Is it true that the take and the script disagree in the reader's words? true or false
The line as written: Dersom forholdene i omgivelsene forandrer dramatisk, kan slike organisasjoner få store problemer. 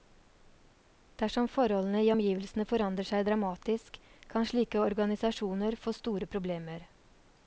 true